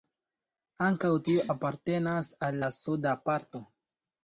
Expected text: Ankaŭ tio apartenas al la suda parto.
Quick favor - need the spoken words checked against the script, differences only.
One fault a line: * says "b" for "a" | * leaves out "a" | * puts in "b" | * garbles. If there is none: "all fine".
all fine